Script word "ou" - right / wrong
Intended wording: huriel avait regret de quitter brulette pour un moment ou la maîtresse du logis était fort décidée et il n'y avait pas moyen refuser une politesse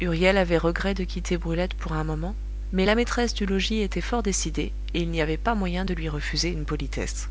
wrong